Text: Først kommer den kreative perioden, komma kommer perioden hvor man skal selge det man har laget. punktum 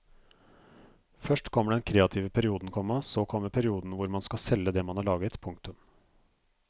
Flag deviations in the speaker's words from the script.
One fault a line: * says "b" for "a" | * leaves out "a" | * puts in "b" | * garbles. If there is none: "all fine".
* puts in "så"